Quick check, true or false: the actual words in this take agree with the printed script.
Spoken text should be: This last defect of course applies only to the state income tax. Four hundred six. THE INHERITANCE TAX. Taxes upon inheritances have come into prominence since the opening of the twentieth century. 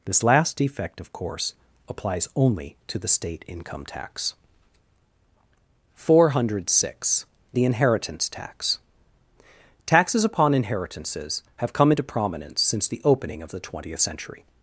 true